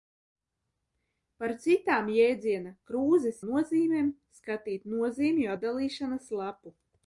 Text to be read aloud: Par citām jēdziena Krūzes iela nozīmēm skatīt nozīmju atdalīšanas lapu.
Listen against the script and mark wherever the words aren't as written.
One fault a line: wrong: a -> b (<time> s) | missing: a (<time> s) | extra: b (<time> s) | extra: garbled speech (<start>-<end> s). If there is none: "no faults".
missing: iela (3.4 s)